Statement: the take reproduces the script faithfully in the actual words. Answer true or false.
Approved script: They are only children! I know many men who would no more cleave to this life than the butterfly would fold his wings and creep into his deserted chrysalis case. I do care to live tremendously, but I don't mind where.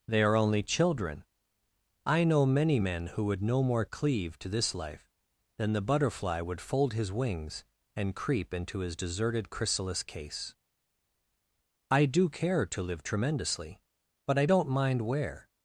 true